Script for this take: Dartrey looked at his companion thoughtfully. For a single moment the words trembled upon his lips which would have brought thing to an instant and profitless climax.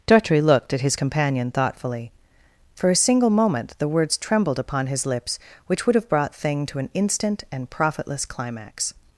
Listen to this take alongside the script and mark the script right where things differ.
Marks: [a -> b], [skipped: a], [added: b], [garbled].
Dartrey looked at his companion thoughtfully. For a single moment the words trembled upon his lips which would have brought thing to an instant and profitless climax.